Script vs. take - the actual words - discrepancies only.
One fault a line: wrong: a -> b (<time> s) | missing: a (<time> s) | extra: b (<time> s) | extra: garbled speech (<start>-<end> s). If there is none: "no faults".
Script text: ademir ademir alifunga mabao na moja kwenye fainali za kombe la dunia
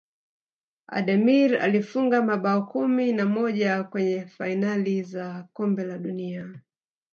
missing: ademir (1.6 s)
extra: kumi (2.6 s)